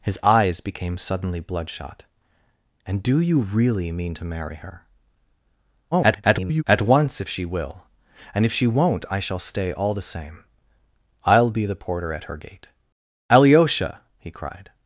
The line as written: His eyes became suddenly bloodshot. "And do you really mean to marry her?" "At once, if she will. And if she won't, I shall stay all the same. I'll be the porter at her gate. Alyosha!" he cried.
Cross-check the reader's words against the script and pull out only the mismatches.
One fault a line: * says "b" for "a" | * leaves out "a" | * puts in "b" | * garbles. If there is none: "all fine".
* garbles